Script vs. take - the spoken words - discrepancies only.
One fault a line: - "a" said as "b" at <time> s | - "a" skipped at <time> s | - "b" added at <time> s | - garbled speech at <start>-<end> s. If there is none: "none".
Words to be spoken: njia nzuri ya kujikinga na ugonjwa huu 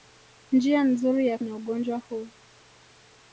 - "kujikinga" skipped at 1.4 s